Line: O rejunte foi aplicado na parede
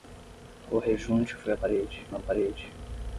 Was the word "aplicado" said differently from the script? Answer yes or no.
yes